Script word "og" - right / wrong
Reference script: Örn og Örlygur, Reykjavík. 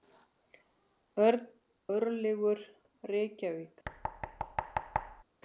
wrong